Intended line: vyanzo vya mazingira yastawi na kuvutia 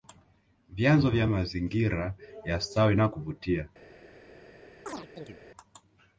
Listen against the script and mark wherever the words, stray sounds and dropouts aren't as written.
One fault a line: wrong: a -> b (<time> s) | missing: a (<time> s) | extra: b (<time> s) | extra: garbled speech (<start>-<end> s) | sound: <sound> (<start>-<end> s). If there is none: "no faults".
sound: chirp (4.9-5.4 s)